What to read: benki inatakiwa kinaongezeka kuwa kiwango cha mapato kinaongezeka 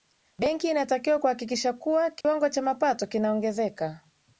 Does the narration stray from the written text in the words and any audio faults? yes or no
yes